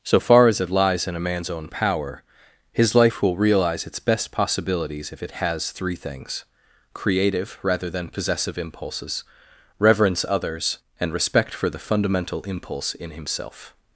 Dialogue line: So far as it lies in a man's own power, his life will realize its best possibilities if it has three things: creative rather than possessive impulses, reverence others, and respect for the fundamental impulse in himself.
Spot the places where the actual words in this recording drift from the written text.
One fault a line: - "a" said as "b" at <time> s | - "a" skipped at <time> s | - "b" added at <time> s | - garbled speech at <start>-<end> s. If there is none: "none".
none